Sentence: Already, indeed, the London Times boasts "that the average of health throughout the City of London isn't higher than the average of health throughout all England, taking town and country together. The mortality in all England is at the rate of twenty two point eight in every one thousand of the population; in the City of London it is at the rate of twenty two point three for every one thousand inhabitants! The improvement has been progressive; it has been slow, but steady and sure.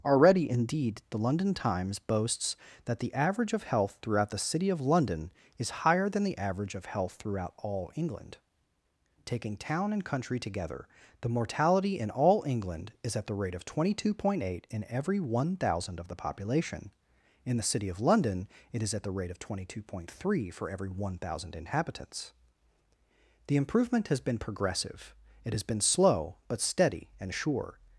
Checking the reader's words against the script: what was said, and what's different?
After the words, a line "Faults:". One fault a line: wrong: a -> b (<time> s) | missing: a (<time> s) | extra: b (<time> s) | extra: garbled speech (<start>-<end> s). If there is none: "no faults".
Already, indeed, the London Times boasts "that the average of health throughout the City of London is higher than the average of health throughout all England, taking town and country together. The mortality in all England is at the rate of twenty two point eight in every one thousand of the population; in the City of London it is at the rate of twenty two point three for every one thousand inhabitants! The improvement has been progressive; it has been slow, but steady and sure.
Faults:
wrong: isn't -> is (5.6 s)